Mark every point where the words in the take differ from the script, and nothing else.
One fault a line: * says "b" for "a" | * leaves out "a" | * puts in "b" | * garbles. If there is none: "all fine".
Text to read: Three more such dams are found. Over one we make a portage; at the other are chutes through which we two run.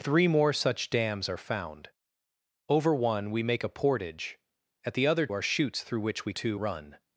all fine